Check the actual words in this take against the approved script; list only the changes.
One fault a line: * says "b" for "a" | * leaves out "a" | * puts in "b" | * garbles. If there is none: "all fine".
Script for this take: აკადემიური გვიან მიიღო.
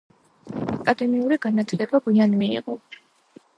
* puts in "განათლება"